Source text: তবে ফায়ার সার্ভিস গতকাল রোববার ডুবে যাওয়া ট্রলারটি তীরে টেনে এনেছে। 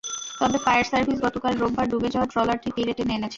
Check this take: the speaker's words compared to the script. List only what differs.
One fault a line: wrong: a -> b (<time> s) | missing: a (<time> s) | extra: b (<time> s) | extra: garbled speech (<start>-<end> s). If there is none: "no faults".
no faults